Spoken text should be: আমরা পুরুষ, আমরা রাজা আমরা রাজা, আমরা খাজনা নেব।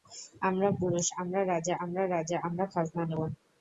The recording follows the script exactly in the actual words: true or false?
true